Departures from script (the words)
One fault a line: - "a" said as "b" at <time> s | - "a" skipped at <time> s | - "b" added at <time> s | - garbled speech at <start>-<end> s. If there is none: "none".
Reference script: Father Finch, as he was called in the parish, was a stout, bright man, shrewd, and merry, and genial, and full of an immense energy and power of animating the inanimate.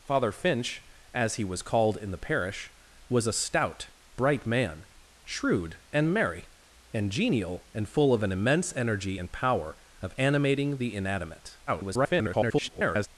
- garbled speech at 11.7-13.1 s